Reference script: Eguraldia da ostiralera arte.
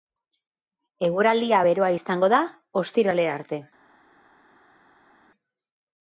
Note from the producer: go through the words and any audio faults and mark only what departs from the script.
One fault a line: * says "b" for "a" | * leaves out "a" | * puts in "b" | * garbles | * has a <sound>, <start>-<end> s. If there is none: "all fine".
* puts in "beroa izango"